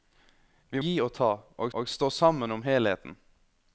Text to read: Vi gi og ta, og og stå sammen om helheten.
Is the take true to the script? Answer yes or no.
yes